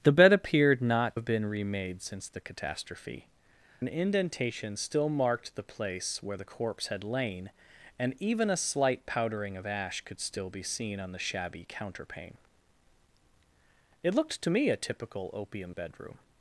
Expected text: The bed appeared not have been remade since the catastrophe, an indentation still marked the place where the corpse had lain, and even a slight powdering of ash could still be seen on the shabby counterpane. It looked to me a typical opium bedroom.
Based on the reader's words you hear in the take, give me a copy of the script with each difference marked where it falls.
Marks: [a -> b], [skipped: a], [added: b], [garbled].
The bed appeared not have been remade since the catastrophe, an indentation still marked the place where the corpse had lain, and even a slight powdering of ash could still be seen on the shabby counterpane. It looked to me a typical opium bedroom.